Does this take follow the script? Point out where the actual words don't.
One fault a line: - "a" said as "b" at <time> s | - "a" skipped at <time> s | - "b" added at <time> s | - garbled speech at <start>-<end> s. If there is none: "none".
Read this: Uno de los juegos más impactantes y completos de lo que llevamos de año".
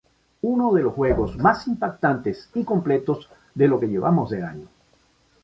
none